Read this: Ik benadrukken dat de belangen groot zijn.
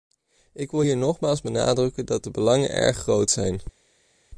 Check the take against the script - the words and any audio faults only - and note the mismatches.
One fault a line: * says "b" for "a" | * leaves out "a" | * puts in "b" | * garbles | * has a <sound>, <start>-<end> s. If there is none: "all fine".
* puts in "wil hier nogmaals"
* puts in "erg"